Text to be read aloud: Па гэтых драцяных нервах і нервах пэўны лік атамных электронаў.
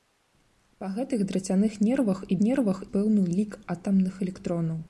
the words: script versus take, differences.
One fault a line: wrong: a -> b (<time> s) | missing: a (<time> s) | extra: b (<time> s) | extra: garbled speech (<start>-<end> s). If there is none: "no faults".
no faults